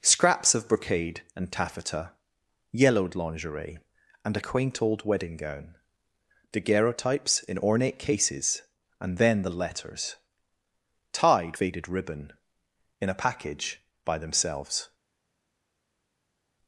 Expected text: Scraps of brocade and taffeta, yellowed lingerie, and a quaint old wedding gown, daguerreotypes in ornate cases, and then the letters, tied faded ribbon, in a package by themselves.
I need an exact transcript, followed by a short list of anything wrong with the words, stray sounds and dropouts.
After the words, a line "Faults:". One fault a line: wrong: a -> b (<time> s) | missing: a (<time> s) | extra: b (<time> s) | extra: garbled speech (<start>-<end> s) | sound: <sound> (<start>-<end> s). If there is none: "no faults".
Scraps of brocade and taffeta, yellowed lingerie, and a quaint old wedding gown, daguerreotypes in ornate cases, and then the letters, tied faded ribbon, in a package by themselves.
Faults:
no faults